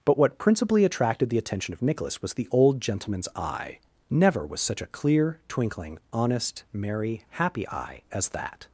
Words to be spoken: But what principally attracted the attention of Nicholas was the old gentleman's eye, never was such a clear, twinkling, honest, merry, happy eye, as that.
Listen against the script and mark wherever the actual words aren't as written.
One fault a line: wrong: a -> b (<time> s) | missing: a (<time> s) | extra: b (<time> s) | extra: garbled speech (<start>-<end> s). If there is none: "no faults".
no faults